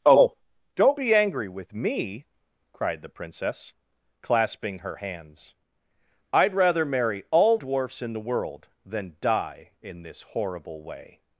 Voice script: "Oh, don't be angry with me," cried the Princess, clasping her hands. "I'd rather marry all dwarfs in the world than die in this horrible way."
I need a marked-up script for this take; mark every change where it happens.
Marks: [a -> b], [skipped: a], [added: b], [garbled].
"Oh, don't be angry with me," cried the Princess, clasping her hands. "I'd rather marry all dwarfs in the world than die in this horrible way."